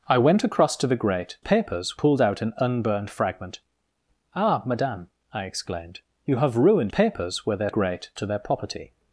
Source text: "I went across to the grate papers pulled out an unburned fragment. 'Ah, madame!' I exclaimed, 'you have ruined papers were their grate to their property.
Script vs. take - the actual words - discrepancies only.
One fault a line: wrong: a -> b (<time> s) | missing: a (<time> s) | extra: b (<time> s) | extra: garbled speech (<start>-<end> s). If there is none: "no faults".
no faults